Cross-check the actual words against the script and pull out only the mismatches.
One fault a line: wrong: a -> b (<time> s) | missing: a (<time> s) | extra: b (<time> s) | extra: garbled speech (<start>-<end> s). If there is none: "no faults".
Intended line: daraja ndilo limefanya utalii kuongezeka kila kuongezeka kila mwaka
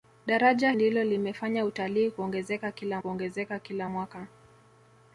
no faults